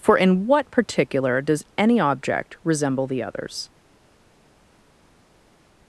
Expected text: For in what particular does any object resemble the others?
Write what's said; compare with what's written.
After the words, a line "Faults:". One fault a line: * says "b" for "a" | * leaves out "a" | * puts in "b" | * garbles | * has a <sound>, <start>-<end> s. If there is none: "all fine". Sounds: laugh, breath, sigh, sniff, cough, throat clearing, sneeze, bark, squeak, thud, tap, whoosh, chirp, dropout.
For in what particular does any object resemble the others?
Faults:
all fine